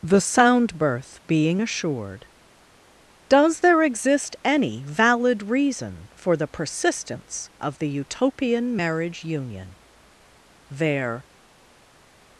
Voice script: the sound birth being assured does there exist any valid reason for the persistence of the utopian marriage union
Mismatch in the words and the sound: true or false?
true